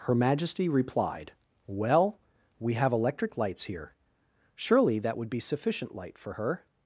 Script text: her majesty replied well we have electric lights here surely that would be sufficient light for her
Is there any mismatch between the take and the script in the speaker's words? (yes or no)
no